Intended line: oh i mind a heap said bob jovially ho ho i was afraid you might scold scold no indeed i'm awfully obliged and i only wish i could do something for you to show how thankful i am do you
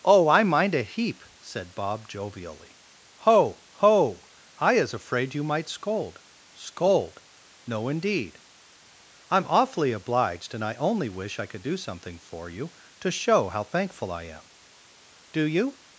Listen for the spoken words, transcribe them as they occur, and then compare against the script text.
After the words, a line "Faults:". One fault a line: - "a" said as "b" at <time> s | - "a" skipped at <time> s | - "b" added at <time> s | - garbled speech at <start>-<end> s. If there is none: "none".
oh i mind a heap said bob jovially ho ho i is afraid you might scold scold no indeed i'm awfully obliged and i only wish i could do something for you to show how thankful i am do you
Faults:
- "was" said as "is" at 4.7 s